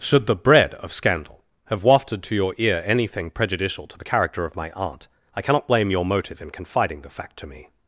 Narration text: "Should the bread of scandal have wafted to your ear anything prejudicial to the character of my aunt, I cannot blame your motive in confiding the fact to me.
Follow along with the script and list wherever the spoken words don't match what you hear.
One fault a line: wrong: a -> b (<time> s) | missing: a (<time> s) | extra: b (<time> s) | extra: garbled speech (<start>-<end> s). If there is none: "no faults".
no faults